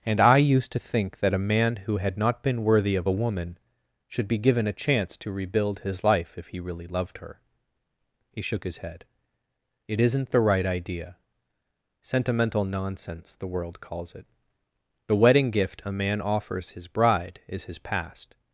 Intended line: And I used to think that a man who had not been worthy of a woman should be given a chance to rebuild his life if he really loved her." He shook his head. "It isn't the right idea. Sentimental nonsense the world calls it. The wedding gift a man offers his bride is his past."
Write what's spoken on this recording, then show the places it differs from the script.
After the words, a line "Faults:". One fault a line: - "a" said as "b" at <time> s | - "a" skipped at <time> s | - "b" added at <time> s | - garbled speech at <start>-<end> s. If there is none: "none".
And I used to think that a man who had not been worthy of a woman should be given a chance to rebuild his life if he really loved her." He shook his head. "It isn't the right idea. Sentimental nonsense the world calls it. The wedding gift a man offers his bride is his past."
Faults:
none